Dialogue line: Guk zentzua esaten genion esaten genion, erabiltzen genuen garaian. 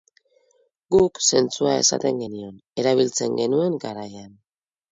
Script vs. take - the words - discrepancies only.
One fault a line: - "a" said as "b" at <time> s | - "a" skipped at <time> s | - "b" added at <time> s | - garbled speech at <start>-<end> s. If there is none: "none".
- "esaten genion" skipped at 2.5 s